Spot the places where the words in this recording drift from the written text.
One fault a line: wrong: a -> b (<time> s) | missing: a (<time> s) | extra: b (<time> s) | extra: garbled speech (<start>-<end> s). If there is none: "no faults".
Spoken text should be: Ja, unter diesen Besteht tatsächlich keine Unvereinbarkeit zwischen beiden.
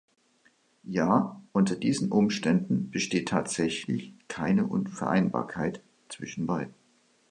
extra: Umständen (2.1 s)